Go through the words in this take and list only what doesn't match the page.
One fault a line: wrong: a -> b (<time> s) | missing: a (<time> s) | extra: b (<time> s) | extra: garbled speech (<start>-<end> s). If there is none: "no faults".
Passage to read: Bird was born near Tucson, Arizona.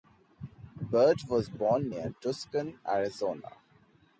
no faults